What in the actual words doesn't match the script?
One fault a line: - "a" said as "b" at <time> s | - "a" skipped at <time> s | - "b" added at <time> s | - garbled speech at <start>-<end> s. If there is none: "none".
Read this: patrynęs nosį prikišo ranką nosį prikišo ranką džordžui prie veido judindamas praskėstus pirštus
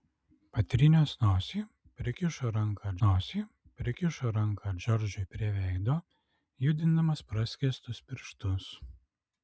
none